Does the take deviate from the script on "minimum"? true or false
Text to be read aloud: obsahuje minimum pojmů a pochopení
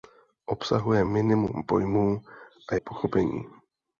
false